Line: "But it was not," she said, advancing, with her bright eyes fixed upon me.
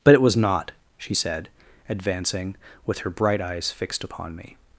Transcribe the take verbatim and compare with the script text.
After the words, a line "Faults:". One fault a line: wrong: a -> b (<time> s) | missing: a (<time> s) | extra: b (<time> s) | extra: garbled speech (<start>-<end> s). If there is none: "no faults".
"But it was not," she said, advancing, with her bright eyes fixed upon me.
Faults:
no faults